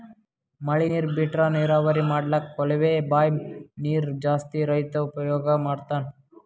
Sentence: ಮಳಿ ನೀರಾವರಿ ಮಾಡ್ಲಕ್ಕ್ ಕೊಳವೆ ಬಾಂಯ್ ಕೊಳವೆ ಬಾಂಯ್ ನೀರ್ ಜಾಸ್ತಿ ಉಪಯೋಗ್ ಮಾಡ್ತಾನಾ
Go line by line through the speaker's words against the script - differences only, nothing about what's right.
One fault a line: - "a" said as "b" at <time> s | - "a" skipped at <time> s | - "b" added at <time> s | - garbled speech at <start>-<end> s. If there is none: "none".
- "ನೀರ್ ಬಿಟ್ರಾ" added at 0.8 s
- "ಕೊಳವೆ ಬಾಂಯ್" skipped at 3.4 s
- "ರೈತಾ" added at 4.6 s